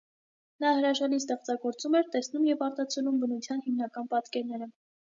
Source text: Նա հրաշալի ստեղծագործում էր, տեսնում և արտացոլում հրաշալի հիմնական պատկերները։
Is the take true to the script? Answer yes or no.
no